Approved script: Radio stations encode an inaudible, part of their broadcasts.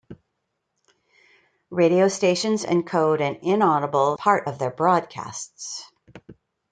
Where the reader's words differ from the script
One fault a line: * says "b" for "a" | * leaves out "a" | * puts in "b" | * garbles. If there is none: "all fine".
all fine